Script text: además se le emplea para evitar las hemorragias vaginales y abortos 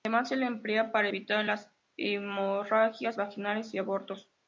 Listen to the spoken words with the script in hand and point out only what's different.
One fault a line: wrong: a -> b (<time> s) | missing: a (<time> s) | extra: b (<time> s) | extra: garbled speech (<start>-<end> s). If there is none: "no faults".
no faults